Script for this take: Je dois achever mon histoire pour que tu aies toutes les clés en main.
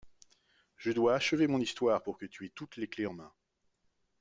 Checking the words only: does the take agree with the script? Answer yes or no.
yes